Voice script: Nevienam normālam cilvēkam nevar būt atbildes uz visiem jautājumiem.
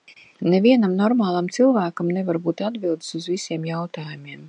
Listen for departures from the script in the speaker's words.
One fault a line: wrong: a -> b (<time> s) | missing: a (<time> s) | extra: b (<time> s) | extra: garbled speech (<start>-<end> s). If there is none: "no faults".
no faults